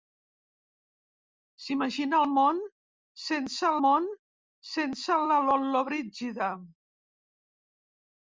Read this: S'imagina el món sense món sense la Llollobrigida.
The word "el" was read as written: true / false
true